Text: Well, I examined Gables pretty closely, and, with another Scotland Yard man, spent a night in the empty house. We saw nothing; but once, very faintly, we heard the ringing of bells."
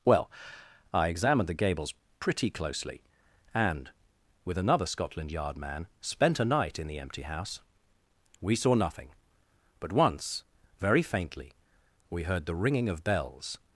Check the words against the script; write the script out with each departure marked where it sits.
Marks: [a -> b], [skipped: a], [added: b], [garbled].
Well, I examined [added: the] Gables pretty closely, and, with another Scotland Yard man, spent a night in the empty house. We saw nothing; but once, very faintly, we heard the ringing of bells."